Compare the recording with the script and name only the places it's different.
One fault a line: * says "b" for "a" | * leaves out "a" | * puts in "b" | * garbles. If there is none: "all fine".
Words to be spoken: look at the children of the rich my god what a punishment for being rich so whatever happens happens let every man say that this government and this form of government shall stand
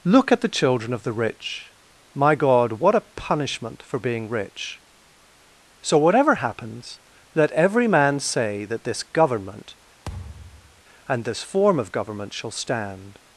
* leaves out "happens"